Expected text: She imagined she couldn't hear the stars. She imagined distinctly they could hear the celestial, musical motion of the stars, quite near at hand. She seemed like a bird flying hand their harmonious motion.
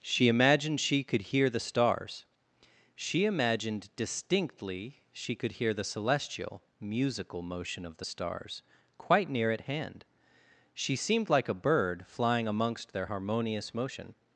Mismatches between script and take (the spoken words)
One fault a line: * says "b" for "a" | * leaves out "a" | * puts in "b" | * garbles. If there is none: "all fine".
* says "could" for "couldn't"
* says "she" for "they"
* says "amongst" for "hand"